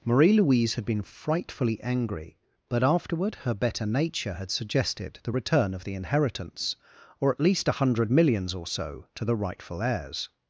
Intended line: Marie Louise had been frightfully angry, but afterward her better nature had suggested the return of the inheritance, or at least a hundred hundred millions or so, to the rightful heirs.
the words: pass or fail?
fail